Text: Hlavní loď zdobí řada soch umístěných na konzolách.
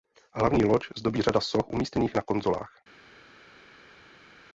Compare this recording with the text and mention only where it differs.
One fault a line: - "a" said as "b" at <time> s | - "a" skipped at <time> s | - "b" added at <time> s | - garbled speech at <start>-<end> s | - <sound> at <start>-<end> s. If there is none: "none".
none